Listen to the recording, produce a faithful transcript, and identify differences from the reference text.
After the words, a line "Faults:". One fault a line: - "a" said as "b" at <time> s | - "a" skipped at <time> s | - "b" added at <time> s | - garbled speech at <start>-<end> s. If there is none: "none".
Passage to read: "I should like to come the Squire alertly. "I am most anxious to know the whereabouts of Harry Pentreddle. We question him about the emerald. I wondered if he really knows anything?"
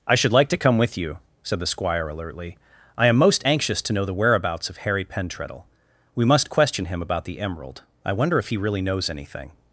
"I should like to come with you," said the Squire alertly. "I am most anxious to know the whereabouts of Harry Pentreddle. We must question him about the emerald. I wonder if he really knows anything?"
Faults:
- "with you said" added at 0.8 s
- "must" added at 6.2 s
- "wondered" said as "wonder" at 8.1 s